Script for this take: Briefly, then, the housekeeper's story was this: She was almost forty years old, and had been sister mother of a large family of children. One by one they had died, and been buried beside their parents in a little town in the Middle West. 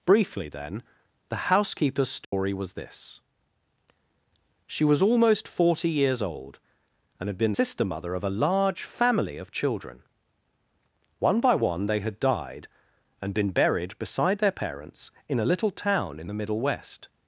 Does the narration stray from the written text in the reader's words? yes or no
no